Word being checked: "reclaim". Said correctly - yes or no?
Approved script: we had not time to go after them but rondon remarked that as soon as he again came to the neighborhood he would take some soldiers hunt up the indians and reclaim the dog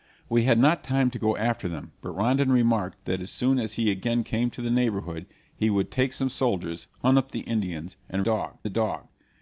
no